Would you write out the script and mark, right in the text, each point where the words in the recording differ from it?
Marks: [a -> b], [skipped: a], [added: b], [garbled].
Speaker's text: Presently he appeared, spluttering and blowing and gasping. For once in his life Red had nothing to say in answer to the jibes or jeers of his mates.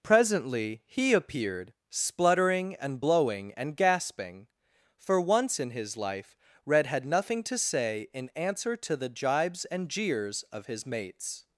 Presently he appeared, spluttering and blowing and gasping. For once in his life Red had nothing to say in answer to the jibes [or -> and] jeers of his mates.